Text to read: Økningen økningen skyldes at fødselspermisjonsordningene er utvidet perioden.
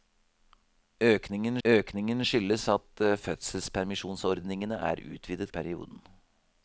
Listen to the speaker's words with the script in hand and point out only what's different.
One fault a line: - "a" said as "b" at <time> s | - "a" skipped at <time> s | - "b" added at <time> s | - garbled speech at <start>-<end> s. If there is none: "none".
none